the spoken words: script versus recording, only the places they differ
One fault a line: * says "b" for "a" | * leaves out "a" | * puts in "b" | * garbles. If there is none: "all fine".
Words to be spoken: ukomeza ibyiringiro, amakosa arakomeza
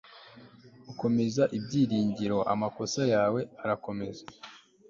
* puts in "yawe"